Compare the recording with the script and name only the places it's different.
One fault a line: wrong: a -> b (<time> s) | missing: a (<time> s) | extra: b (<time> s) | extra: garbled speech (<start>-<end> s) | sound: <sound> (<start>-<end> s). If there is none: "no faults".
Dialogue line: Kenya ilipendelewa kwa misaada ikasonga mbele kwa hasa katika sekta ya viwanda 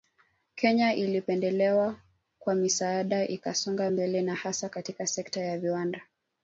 wrong: kwa -> na (4.2 s)